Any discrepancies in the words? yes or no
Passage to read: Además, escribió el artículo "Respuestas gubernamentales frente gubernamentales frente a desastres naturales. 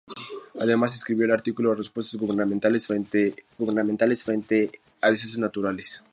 no